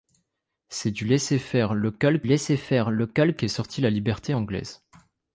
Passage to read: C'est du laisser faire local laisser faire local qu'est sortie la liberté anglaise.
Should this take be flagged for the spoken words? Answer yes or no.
no